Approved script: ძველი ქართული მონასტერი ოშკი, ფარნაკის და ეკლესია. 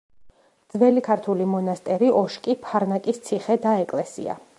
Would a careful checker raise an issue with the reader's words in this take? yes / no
yes